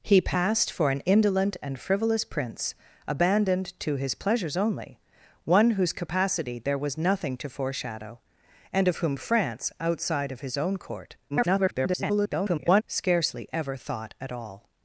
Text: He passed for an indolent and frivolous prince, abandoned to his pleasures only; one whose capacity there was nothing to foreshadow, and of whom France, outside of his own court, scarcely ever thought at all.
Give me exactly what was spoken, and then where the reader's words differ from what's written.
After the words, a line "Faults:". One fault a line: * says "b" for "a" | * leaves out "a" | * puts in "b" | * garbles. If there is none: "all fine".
He passed for an indolent and frivolous prince, abandoned to his pleasures only; one whose capacity there was nothing to foreshadow, and of whom France, outside of his own court, [garbled] scarcely ever thought at all.
Faults:
* garbles